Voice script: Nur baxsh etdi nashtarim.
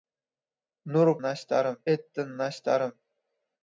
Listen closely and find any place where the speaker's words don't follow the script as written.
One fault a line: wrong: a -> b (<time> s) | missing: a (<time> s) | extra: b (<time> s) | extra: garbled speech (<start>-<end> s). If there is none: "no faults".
wrong: baxsh -> nashtarim (1.3 s)